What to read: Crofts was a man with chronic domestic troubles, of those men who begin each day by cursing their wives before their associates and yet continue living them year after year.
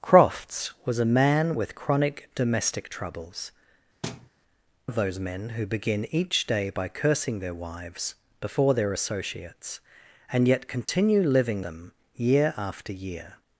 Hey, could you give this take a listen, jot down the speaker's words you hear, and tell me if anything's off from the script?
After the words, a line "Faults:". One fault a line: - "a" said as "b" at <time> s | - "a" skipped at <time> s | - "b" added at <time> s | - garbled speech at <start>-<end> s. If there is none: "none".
Crofts was a man with chronic domestic troubles, of those men who begin each day by cursing their wives before their associates and yet continue living them year after year.
Faults:
none